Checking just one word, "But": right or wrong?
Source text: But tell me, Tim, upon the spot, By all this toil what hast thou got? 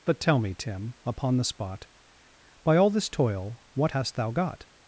right